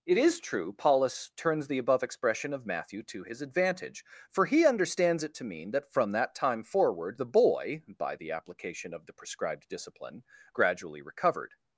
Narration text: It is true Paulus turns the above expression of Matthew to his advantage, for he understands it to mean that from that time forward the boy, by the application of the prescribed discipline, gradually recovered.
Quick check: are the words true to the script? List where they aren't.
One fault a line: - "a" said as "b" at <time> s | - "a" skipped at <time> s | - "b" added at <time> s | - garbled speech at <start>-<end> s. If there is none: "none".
none